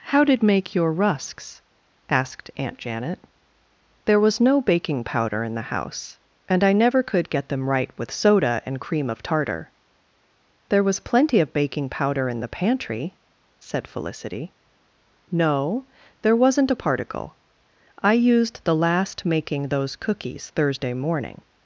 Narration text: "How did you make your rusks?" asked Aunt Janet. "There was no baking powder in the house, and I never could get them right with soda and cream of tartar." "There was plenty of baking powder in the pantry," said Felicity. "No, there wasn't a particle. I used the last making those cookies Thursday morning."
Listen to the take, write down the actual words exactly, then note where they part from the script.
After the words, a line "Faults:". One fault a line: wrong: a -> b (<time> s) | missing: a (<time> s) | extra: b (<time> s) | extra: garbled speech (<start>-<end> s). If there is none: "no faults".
"How did make your rusks?" asked Aunt Janet. "There was no baking powder in the house, and I never could get them right with soda and cream of tartar." "There was plenty of baking powder in the pantry," said Felicity. "No, there wasn't a particle. I used the last making those cookies Thursday morning."
Faults:
missing: you (0.4 s)